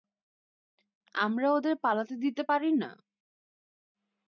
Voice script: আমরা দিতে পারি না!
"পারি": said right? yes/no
yes